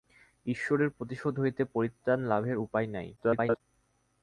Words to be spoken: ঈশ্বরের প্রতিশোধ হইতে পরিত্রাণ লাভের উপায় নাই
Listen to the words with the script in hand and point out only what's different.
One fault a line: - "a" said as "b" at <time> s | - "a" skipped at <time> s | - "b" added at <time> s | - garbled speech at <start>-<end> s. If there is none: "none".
- garbled speech at 3.2-3.6 s